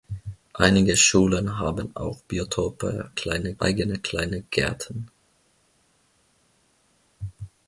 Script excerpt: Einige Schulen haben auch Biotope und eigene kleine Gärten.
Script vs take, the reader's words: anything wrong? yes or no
yes